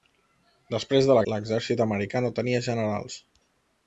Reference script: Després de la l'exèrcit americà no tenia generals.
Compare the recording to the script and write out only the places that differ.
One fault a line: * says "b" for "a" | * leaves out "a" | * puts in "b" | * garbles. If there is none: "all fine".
all fine